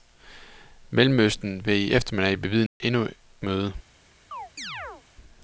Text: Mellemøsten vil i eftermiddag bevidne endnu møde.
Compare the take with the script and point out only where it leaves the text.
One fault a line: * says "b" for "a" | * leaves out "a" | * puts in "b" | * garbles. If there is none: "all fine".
all fine